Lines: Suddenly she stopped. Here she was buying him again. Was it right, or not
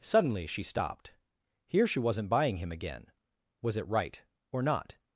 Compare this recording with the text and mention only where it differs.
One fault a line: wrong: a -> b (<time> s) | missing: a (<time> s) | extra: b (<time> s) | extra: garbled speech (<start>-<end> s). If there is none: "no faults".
wrong: was -> wasn't (2.0 s)